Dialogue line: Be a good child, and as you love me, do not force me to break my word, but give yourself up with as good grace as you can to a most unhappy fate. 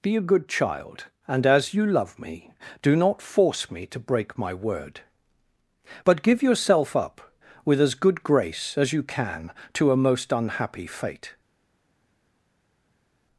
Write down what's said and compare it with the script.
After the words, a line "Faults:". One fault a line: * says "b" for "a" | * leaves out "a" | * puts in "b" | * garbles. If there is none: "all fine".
Be a good child, and as you love me, do not force me to break my word, but give yourself up with as good grace as you can to a most unhappy fate.
Faults:
all fine